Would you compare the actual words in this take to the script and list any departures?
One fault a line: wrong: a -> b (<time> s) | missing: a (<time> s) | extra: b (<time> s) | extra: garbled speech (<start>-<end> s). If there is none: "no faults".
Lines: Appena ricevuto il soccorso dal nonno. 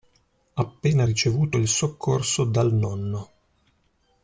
no faults